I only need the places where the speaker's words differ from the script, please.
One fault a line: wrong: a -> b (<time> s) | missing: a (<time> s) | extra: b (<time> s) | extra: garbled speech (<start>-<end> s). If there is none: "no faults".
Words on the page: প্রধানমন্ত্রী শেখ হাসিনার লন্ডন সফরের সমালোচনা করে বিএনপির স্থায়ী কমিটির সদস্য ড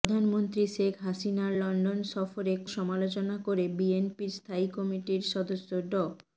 no faults